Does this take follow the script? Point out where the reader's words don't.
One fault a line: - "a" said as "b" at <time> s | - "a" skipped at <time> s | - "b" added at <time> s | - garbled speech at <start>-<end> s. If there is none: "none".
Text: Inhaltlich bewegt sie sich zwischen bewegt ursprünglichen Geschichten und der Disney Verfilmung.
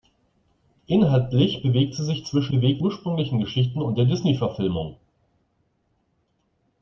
none